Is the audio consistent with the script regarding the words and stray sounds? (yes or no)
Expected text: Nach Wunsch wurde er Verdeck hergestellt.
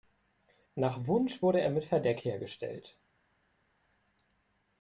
no